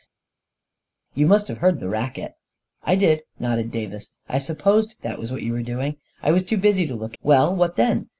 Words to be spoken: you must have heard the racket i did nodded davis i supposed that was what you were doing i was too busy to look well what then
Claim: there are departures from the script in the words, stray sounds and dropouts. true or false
false